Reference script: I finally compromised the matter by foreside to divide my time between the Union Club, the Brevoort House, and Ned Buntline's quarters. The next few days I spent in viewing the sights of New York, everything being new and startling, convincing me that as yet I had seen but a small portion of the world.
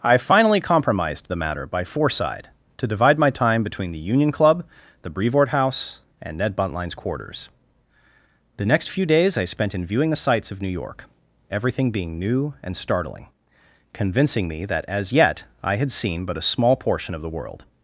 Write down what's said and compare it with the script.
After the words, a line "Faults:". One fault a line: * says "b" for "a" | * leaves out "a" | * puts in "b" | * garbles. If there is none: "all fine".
I finally compromised the matter by foreside to divide my time between the Union Club, the Brevoort House, and Ned Buntline's quarters. The next few days I spent in viewing the sights of New York, everything being new and startling, convincing me that as yet I had seen but a small portion of the world.
Faults:
all fine